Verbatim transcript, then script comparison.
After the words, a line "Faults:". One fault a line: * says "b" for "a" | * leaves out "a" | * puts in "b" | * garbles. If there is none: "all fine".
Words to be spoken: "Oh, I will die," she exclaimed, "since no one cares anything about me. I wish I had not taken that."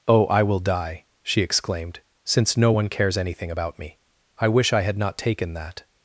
"Oh, I will die," she exclaimed, "since no one cares anything about me. I wish I had not taken that."
Faults:
all fine